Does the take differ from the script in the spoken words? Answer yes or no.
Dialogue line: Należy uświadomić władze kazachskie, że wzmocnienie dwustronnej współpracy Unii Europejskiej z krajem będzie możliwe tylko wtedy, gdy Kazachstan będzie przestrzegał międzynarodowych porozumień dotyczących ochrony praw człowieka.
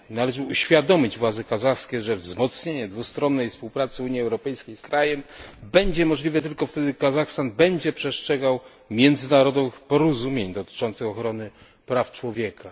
no